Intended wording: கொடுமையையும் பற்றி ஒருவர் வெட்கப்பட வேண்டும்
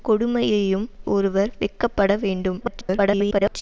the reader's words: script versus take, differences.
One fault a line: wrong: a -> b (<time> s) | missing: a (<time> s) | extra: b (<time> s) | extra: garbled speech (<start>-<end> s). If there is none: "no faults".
missing: பற்றி (0.9 s)
extra: garbled speech (2.6-3.6 s)